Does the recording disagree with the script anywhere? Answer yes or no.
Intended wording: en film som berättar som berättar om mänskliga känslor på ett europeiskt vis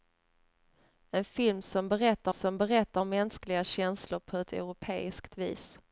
no